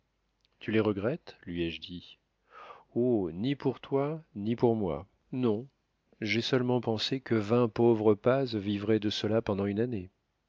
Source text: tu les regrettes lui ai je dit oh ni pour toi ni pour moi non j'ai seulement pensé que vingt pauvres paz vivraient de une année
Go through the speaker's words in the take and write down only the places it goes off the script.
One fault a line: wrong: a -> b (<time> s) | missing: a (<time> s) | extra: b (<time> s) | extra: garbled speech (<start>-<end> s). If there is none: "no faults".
extra: cela pendant (9.1 s)